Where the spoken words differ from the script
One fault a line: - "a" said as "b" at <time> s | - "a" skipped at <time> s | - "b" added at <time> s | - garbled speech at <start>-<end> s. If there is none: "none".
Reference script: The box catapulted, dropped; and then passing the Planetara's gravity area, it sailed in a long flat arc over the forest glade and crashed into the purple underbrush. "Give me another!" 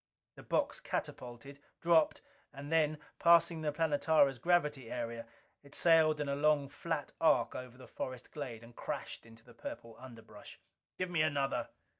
none